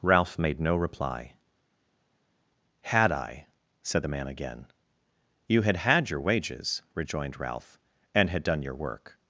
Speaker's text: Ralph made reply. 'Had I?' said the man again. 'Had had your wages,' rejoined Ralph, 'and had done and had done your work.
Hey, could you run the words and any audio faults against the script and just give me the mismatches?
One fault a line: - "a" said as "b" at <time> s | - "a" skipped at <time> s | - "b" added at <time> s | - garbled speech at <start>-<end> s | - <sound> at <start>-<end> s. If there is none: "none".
- "no" added at 0.6 s
- "You" added at 5.5 s
- "and had done" skipped at 8.6 s